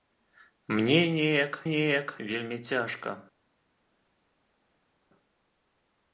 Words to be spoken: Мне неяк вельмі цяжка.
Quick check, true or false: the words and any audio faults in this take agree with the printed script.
false